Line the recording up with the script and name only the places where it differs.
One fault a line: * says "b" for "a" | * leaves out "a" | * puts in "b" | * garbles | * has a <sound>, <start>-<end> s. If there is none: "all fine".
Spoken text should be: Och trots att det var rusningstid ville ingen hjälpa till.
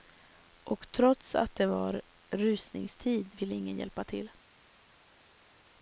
all fine